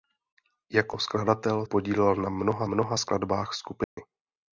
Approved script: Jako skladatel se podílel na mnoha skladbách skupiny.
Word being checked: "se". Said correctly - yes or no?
no